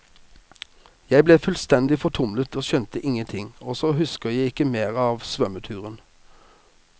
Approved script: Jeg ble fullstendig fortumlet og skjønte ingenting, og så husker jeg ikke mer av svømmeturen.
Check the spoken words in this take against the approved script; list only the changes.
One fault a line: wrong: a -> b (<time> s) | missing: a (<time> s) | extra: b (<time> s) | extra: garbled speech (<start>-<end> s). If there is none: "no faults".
no faults